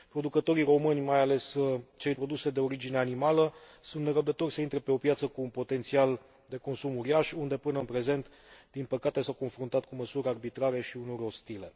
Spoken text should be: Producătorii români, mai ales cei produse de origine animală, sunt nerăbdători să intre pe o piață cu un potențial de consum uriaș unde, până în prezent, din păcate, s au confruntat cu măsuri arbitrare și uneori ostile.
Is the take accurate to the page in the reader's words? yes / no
yes